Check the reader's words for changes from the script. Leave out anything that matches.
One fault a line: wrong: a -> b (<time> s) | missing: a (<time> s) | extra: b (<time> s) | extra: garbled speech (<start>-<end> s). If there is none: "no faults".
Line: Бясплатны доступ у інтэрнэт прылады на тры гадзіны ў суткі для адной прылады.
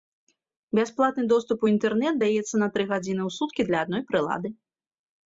wrong: прылады -> даецца (2.2 s)